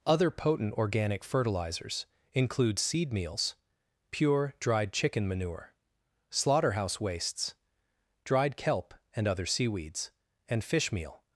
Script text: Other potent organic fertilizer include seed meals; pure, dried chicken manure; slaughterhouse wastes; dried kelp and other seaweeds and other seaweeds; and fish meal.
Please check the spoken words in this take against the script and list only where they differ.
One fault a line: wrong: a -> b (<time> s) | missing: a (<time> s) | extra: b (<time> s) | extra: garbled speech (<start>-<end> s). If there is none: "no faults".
wrong: fertilizer -> fertilizers (1.2 s)
missing: other seaweeds and (10.6 s)